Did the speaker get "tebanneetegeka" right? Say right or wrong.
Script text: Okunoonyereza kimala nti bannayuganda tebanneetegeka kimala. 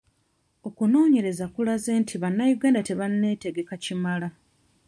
right